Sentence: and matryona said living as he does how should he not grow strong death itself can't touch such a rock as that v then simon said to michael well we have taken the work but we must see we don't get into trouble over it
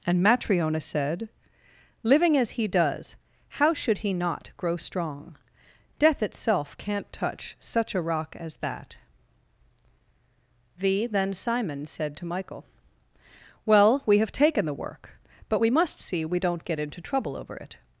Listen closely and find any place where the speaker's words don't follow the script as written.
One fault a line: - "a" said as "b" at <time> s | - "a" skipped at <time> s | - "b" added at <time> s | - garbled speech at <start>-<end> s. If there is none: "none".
none